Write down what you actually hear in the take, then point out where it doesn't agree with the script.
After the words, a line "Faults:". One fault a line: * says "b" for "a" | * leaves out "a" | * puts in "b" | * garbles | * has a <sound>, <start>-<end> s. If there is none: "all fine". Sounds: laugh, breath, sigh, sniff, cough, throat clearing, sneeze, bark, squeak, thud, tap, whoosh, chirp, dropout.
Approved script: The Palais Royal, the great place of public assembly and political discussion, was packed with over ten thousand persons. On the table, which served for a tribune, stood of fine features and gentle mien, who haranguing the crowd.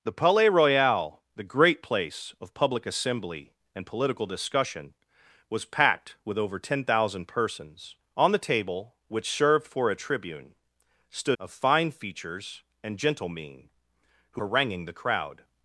The Palais Royal, the great place of public assembly and political discussion, was packed with over ten thousand persons. On the table, which served for a tribune, stood of fine features and gentle mien, who haranguing the crowd.
Faults:
all fine